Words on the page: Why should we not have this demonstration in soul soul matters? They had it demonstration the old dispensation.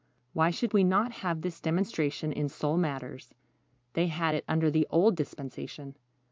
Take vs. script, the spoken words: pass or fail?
fail